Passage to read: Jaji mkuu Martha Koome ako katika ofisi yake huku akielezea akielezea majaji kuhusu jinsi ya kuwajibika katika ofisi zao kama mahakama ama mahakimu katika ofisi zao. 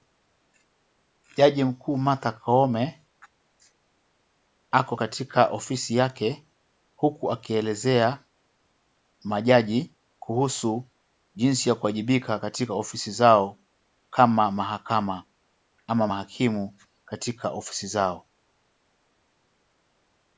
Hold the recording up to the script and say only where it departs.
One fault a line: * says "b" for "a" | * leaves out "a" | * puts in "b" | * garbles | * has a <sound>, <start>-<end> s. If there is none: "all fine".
* leaves out "akielezea"